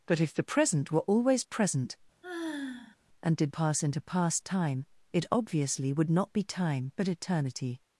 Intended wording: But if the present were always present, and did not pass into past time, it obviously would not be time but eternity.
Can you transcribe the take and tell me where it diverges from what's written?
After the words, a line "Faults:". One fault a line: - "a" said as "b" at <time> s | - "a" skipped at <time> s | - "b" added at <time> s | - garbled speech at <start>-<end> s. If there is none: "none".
But if the present were always present, and did pass into past time, it obviously would not be time but eternity.
Faults:
- "not" skipped at 3.5 s